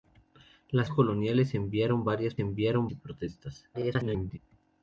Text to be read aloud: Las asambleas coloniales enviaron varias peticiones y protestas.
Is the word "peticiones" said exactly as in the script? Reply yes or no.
no